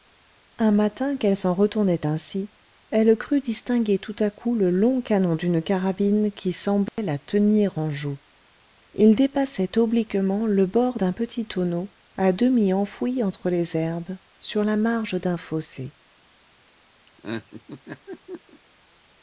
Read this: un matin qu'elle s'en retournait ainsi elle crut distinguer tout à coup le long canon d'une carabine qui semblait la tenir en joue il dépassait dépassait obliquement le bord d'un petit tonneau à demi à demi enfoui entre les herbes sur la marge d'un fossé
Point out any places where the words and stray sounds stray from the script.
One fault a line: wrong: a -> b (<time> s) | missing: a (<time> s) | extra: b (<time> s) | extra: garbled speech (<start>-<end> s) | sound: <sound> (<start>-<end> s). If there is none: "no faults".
sound: dropout (6.9-7.0 s)
missing: dépassait (9.8 s)
missing: à demi (12.7 s)
sound: laugh (17.1-18.6 s)